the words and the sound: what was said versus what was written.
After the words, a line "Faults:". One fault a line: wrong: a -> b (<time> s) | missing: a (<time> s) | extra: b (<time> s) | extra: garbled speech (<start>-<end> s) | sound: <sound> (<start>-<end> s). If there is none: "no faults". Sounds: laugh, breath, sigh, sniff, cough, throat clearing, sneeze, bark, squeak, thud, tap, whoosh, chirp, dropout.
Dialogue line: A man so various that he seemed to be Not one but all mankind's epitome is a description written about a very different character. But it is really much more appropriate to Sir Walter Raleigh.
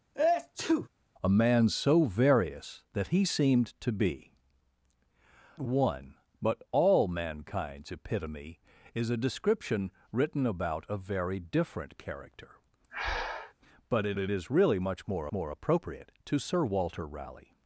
A man so various that he seemed to be One but all mankind's epitome is a description written about a very different character. But it it is really much more more appropriate to Sir Walter Raleigh.
Faults:
sound: sneeze (0.1-0.9 s)
missing: Not (4.3 s)
sound: breath (12.9-13.5 s)
extra: it (14.2 s)
extra: more (15.3 s)